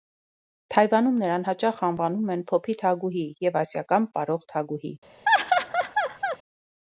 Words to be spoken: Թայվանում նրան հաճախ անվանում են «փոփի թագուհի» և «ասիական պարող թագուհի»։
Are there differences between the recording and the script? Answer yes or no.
no